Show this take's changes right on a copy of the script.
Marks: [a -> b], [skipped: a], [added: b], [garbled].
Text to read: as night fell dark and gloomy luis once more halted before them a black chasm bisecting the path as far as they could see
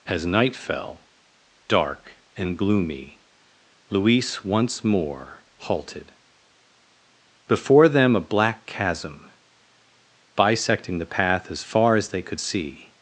as night fell dark and gloomy luis once more halted before them a black chasm bisecting the path as far as they could see